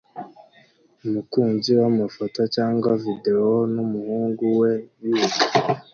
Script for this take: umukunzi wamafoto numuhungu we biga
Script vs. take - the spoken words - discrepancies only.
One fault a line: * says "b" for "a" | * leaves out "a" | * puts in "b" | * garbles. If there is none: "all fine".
* puts in "cyangwa videwo"